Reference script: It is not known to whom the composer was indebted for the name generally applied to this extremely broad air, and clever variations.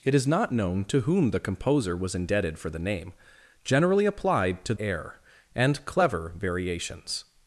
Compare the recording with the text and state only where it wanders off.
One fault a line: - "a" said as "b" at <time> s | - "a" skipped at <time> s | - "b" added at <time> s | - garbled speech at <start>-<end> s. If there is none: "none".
- "this extremely broad" skipped at 4.7 s